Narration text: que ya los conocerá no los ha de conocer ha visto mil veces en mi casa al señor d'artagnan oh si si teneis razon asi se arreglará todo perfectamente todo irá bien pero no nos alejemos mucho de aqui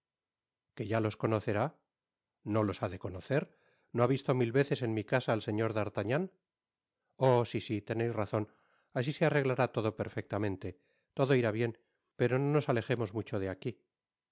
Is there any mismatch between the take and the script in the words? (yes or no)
yes